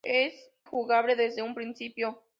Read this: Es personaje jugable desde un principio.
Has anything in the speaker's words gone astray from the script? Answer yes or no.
yes